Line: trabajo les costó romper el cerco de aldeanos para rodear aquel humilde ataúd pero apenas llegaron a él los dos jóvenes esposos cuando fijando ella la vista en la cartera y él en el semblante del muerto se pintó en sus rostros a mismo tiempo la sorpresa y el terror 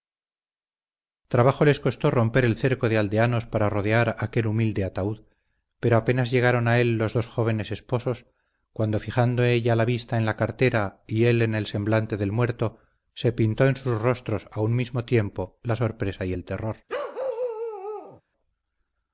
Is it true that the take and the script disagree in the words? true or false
true